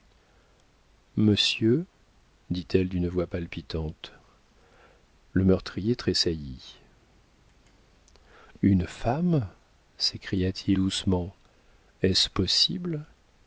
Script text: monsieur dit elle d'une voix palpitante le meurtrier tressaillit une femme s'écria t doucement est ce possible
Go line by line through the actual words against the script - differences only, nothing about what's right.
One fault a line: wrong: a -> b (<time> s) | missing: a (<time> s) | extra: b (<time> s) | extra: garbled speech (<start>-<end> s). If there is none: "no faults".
no faults